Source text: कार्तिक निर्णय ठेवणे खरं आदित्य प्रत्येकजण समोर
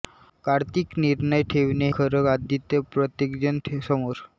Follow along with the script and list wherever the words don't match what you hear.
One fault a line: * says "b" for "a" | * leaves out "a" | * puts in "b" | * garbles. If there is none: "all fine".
all fine